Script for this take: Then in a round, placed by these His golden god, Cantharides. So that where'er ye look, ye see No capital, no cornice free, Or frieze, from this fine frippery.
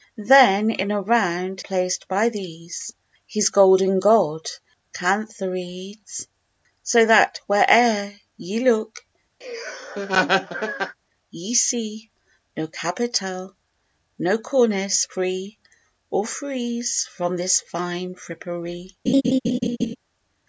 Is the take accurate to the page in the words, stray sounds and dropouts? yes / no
no